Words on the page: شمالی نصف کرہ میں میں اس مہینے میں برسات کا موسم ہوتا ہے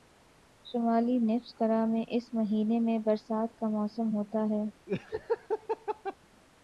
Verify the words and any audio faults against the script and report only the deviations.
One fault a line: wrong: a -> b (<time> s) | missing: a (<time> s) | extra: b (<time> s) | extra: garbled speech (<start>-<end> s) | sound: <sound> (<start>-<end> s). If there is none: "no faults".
missing: میں (2.0 s)
sound: laugh (4.9-6.2 s)